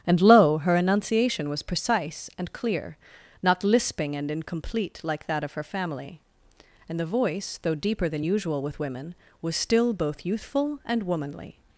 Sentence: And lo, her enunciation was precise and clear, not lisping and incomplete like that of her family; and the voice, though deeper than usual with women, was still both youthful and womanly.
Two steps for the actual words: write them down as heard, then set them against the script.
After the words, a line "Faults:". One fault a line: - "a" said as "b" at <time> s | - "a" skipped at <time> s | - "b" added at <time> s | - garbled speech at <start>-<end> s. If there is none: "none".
And lo, her enunciation was precise and clear, not lisping and incomplete like that of her family; and the voice, though deeper than usual with women, was still both youthful and womanly.
Faults:
none